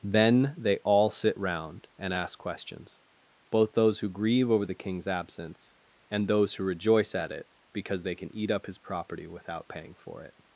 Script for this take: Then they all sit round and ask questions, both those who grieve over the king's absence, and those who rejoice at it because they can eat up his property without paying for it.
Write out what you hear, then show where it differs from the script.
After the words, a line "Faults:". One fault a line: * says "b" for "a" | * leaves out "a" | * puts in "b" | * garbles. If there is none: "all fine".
Then they all sit round and ask questions, both those who grieve over the king's absence, and those who rejoice at it because they can eat up his property without paying for it.
Faults:
all fine